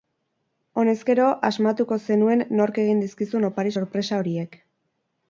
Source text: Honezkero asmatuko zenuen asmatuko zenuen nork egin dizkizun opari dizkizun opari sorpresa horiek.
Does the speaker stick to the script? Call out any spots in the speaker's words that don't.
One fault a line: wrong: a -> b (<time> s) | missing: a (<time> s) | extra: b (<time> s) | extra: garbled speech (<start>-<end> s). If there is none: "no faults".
missing: asmatuko zenuen (2.4 s)
missing: dizkizun opari (3.8 s)